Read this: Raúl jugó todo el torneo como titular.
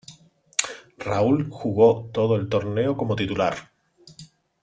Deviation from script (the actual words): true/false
false